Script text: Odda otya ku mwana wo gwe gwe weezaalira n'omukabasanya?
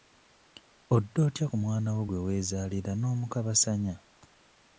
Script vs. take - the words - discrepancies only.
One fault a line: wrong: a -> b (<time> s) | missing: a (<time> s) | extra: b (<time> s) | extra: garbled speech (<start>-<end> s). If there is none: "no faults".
missing: gwe (2.2 s)